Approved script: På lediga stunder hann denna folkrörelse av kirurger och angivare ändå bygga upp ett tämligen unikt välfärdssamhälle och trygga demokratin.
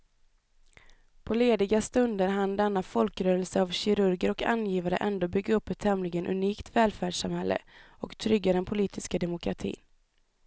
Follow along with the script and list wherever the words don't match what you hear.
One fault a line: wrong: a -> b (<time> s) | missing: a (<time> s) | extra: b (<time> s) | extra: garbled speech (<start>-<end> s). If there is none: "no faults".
extra: den politiska (8.5 s)